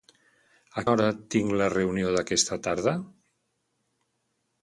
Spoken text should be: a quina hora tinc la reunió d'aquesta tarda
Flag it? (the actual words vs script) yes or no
yes